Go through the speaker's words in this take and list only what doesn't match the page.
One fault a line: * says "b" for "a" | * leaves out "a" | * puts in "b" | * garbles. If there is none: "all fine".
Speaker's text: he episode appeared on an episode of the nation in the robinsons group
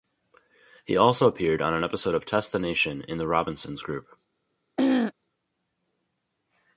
* says "also" for "episode"
* puts in "test"